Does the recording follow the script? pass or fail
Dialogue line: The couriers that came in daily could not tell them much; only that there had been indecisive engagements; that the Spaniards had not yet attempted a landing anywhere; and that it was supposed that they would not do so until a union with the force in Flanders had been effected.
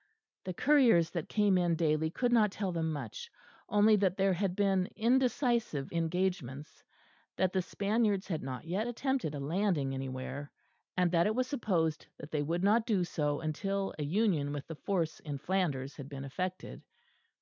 pass